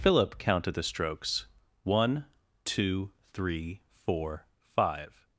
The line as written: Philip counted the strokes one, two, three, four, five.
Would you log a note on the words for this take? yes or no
no